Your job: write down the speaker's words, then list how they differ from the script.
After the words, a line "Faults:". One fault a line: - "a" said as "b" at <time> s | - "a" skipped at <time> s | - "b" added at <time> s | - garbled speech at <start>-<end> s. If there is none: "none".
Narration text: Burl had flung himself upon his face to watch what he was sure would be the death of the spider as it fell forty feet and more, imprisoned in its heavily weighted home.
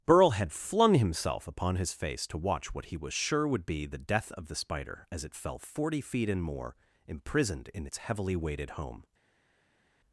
Burl had flung himself upon his face to watch what he was sure would be the death of the spider as it fell forty feet and more, imprisoned in its heavily weighted home.
Faults:
none